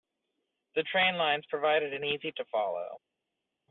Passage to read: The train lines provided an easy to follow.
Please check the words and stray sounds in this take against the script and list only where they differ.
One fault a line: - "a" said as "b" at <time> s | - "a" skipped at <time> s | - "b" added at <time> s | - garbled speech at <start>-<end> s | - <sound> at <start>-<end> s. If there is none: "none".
none